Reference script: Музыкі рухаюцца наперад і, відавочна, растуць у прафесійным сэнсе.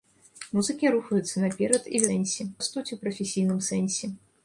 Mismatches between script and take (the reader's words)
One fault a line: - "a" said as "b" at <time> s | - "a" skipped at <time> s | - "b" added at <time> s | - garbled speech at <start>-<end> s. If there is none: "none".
- "відавочна" said as "сэнсе" at 2.1 s